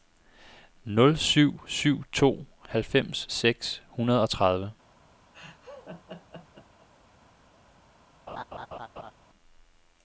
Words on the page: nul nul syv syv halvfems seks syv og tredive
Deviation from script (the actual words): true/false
true